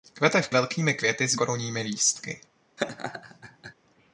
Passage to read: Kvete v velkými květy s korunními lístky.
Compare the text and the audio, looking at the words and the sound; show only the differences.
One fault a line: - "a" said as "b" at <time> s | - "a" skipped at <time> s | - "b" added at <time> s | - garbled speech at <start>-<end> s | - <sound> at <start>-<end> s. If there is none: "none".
- laugh at 2.8-3.7 s